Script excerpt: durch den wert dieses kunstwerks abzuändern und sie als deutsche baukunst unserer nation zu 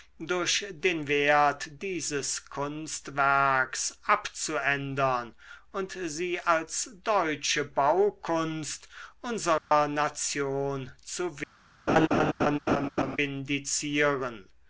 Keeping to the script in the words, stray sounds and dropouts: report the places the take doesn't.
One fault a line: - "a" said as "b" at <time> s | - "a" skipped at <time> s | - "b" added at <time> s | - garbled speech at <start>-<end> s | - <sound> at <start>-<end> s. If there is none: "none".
- dropout at 9.6-9.7 s
- laugh at 11.9-13.2 s